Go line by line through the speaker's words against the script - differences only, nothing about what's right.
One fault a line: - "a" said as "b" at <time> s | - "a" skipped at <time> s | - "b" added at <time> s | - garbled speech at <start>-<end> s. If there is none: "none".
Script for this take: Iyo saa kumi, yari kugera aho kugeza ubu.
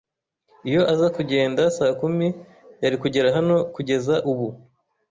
- "aza kugenda" added at 0.9 s
- "aho" said as "hano" at 3.4 s